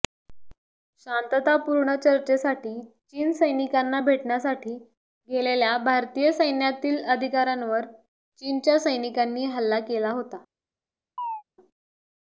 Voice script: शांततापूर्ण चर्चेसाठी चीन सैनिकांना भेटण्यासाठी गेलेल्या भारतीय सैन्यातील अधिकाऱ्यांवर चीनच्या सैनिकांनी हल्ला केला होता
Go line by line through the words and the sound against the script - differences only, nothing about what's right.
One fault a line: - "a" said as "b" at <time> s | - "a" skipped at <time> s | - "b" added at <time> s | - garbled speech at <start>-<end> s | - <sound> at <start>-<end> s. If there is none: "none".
- chirp at 11.2-11.4 s